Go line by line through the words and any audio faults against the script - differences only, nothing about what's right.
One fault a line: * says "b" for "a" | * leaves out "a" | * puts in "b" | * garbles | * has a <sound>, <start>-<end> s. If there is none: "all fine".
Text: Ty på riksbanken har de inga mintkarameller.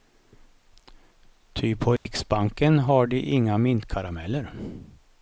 * has a dropout, 2.0-2.1 s